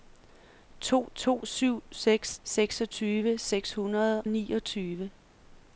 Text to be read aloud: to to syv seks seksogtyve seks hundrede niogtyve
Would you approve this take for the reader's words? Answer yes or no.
yes